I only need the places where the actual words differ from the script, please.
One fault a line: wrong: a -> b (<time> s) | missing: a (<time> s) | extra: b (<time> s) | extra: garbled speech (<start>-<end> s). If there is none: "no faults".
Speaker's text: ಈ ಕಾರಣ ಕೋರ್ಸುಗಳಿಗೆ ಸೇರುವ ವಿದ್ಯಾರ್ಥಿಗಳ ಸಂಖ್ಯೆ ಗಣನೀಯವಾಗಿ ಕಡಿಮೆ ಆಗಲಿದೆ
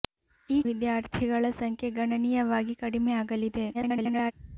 missing: ಕಾರಣ ಕೋರ್ಸುಗಳಿಗೆ ಸೇರುವ (0.6 s)
extra: garbled speech (3.7-4.3 s)